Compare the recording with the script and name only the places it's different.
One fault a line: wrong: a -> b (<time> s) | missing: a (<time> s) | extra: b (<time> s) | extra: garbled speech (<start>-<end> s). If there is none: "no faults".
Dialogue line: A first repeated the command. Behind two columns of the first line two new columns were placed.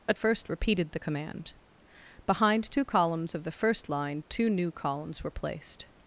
no faults